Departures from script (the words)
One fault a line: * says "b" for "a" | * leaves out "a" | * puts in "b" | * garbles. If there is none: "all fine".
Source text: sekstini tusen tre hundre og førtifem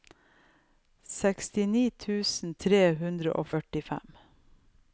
all fine